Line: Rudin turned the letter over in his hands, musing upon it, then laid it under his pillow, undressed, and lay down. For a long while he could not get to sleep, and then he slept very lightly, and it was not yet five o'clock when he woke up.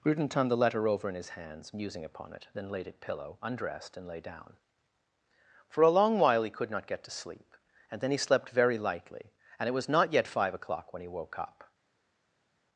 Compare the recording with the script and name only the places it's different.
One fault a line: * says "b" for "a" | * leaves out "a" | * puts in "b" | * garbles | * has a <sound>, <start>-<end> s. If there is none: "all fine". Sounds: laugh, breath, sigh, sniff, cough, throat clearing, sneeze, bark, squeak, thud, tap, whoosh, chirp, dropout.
* leaves out "under his"